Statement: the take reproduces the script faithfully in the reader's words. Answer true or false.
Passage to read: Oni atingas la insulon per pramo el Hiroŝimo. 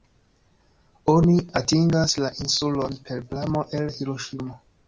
true